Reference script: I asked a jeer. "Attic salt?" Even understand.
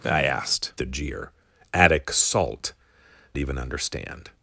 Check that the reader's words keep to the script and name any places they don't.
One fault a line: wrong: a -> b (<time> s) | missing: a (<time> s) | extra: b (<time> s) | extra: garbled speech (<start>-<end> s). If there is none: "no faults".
no faults